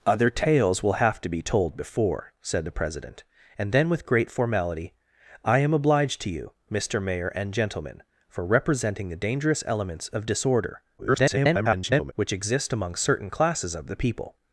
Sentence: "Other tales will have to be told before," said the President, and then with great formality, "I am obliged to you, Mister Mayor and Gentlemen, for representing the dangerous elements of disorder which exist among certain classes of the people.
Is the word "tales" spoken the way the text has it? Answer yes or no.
yes